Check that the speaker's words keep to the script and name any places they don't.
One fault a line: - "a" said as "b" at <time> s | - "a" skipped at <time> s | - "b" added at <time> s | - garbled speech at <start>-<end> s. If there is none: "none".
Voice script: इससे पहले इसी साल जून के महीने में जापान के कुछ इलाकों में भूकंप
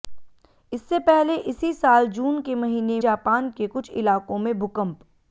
- "में" skipped at 3.0 s